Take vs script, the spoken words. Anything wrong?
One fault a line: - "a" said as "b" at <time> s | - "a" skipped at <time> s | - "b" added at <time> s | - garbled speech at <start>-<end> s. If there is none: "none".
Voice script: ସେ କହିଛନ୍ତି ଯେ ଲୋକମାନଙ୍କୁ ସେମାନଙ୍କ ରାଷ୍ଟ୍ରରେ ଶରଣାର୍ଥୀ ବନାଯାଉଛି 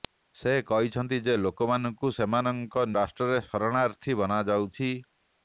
none